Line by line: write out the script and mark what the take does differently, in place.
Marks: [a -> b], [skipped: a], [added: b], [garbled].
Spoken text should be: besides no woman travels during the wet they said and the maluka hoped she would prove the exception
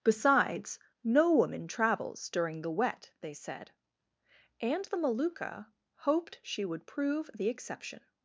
besides no woman travels during the wet they said and the maluka hoped she would prove the exception